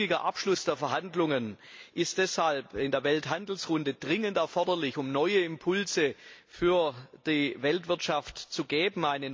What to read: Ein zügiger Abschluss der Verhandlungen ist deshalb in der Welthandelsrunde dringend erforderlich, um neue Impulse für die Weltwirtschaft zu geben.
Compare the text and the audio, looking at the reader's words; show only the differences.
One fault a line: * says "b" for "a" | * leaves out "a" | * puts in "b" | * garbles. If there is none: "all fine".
all fine